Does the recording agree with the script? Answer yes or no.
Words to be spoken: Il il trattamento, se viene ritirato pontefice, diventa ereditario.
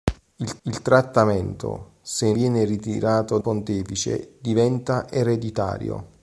yes